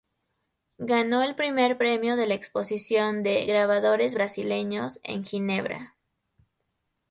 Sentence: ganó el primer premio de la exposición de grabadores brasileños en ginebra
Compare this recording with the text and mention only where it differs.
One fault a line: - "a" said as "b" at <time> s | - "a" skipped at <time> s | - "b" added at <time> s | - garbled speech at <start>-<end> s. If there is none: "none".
none